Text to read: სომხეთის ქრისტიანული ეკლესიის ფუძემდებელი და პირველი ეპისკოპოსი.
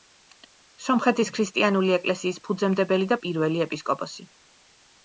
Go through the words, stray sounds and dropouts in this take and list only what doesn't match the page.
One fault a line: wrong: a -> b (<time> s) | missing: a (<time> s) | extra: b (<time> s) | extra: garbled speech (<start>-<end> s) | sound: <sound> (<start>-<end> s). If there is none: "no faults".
no faults